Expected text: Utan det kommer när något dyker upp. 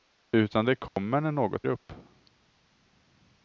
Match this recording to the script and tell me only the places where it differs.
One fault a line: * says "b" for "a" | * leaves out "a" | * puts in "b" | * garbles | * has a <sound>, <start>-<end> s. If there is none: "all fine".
* has a dropout, 0.9-1.0 s
* leaves out "dyker"